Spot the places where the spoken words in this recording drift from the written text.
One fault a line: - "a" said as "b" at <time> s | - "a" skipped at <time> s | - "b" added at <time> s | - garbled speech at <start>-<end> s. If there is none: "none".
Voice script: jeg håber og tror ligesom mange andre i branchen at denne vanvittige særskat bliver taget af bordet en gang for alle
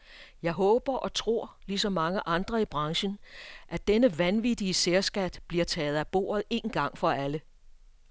none